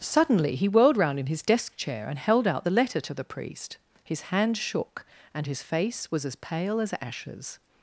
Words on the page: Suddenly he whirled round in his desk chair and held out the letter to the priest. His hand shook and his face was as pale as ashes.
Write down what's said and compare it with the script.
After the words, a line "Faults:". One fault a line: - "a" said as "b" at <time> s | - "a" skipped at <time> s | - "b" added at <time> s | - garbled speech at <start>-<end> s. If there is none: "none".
Suddenly he whirled round in his desk chair and held out the letter to the priest. His hand shook and his face was as pale as ashes.
Faults:
none